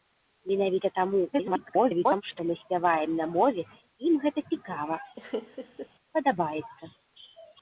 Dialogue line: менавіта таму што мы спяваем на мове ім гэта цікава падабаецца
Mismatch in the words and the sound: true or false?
true